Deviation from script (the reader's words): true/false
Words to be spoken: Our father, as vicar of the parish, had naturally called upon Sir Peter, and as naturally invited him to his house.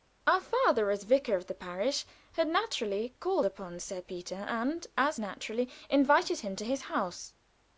false